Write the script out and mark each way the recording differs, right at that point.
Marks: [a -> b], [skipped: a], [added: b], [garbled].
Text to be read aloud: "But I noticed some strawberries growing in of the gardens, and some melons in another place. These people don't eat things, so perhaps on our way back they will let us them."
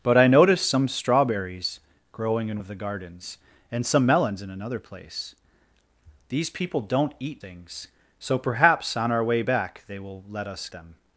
"But I noticed some strawberries growing in of the gardens, and some melons in another place. These people don't eat things, so perhaps on our way back they will let us them."